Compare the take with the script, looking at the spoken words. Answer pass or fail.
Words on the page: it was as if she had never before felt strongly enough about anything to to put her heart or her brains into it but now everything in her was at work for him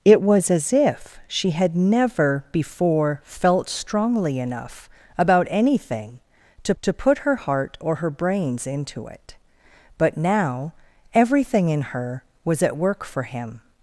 pass